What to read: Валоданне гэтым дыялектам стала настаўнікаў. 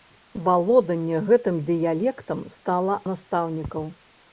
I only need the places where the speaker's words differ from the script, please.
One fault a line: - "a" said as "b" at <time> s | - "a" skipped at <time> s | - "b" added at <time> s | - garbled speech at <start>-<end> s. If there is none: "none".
none